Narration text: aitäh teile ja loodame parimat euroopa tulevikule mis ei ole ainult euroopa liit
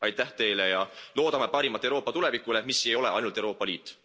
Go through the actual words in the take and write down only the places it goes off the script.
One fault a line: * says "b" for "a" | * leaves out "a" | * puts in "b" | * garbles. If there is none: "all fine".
all fine